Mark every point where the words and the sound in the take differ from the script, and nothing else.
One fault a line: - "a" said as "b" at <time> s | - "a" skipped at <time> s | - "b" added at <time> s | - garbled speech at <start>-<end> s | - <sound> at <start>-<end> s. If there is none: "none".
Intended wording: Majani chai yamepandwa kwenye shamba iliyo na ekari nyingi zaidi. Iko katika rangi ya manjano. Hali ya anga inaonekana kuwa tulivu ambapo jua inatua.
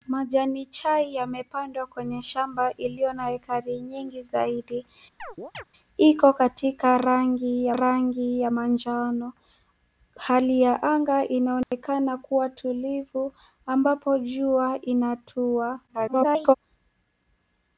- chirp at 5.2-5.6 s
- "rangi ya" added at 7.7 s
- dropout at 11.6-11.7 s
- garbled speech at 15.9-16.5 s